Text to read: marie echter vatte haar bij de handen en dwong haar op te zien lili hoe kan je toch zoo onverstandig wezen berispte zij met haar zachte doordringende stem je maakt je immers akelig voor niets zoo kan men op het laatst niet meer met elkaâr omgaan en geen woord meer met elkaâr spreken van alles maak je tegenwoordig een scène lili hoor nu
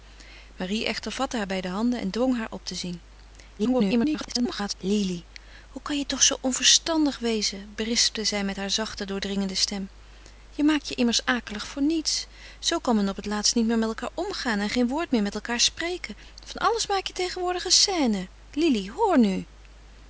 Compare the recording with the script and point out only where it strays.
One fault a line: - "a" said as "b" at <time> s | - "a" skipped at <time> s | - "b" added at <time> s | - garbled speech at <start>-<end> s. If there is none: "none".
- garbled speech at 3.6-4.7 s